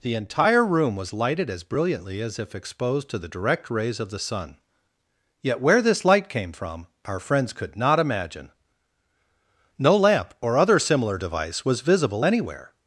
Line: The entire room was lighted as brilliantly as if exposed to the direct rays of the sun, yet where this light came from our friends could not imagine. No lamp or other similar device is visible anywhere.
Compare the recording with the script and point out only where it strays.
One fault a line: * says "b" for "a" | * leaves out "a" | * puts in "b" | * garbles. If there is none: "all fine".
* says "was" for "is"